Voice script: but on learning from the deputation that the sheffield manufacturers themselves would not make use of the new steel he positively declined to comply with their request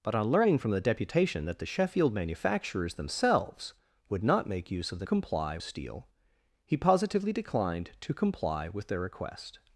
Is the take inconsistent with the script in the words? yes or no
yes